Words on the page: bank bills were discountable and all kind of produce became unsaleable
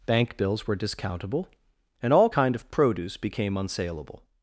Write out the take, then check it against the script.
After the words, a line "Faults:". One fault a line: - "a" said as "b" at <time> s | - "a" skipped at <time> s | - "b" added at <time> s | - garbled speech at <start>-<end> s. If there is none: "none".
bank bills were discountable and all kind of produce became unsaleable
Faults:
none